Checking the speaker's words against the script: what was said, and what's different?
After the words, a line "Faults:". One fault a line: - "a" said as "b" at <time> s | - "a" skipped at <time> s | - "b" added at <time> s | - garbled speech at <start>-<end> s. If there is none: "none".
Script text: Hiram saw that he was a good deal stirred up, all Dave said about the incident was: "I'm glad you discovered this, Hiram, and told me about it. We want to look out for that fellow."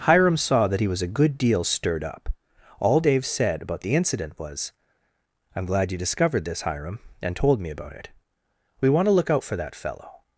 Hiram saw that he was a good deal stirred up, all Dave said about the incident was: "I'm glad you discovered this, Hiram, and told me about it. We want to look out for that fellow."
Faults:
none